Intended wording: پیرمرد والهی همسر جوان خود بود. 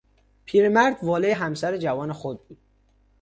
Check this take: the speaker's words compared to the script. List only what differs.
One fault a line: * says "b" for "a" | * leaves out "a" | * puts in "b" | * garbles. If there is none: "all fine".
all fine